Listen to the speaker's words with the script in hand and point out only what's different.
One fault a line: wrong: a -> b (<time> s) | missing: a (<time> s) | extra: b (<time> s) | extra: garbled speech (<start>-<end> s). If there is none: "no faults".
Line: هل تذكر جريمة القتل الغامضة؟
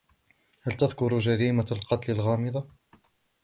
no faults